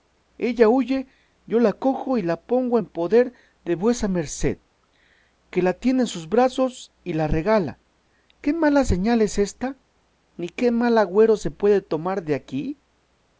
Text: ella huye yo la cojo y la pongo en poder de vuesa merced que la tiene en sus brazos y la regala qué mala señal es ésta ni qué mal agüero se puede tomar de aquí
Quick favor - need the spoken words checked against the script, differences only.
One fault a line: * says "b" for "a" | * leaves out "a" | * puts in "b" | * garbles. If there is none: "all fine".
all fine